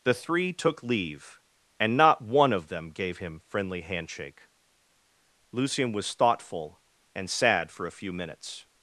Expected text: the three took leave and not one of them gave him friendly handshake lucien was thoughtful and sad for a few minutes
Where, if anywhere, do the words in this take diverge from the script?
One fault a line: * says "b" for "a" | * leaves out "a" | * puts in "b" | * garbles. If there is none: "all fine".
all fine